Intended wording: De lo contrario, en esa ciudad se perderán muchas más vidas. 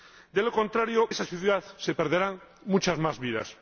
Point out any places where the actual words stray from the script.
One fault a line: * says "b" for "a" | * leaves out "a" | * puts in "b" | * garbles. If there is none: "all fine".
* leaves out "en"